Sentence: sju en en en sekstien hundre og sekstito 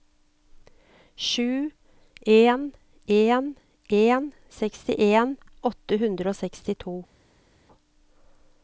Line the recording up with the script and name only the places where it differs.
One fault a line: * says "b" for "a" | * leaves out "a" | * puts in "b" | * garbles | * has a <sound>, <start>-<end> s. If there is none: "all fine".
* puts in "åtte"